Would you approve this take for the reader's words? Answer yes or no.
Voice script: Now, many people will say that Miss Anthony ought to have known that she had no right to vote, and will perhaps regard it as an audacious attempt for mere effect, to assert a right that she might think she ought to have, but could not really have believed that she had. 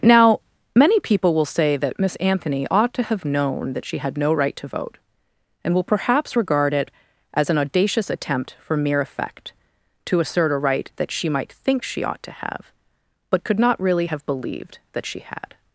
yes